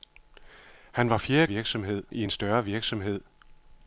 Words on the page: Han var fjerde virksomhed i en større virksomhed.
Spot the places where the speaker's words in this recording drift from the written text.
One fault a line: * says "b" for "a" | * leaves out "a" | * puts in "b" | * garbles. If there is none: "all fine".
all fine